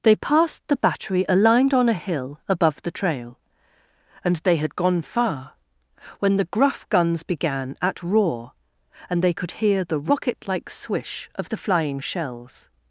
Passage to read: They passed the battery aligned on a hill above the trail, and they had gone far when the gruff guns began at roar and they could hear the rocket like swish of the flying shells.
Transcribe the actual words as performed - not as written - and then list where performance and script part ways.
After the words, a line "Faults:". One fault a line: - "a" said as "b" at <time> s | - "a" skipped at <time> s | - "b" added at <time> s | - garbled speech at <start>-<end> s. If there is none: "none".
They passed the battery aligned on a hill above the trail, and they had gone far when the gruff guns began at roar and they could hear the rocket like swish of the flying shells.
Faults:
none